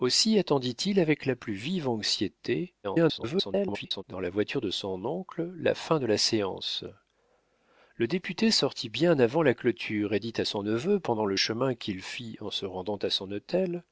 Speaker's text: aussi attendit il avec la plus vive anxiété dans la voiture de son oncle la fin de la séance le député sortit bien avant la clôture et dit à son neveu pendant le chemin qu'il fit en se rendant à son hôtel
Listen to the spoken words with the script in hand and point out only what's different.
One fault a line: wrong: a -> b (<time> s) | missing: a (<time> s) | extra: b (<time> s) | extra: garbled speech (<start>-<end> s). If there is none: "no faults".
extra: garbled speech (2.8-4.0 s)